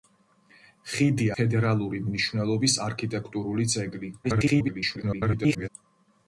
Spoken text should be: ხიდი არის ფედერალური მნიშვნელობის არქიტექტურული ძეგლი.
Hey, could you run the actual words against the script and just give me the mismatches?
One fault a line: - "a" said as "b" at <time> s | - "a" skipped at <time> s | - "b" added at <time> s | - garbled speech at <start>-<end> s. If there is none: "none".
- "არის" skipped at 1.3 s
- garbled speech at 4.2-5.7 s